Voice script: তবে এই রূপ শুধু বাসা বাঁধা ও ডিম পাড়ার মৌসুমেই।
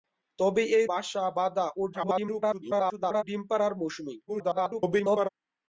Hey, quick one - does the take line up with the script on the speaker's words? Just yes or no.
no